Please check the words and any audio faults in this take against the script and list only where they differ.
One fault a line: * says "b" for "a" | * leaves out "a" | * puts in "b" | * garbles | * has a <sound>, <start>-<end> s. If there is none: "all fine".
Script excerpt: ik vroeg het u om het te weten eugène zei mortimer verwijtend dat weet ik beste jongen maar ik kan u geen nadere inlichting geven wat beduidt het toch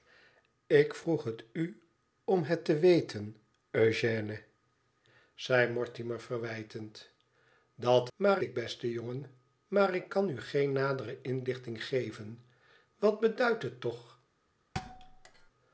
* says "maar" for "weet"
* has a thud, 14.7-15.5 s